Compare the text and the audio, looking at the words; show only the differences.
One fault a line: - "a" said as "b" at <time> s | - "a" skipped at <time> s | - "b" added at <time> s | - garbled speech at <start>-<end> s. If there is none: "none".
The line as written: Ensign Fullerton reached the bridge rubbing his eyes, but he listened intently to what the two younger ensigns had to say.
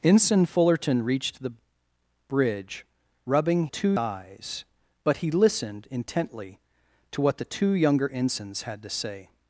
- "his" said as "two" at 3.7 s